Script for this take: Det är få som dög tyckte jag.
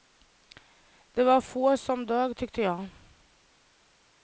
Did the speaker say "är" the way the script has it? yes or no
no